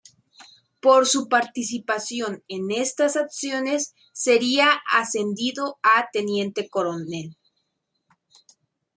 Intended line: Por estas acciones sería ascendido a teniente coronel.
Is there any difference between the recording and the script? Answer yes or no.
yes